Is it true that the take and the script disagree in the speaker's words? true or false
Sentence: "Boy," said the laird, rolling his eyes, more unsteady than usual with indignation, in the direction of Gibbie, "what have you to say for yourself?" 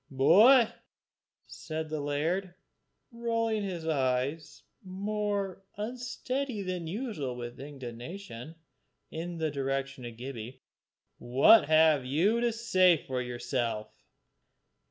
false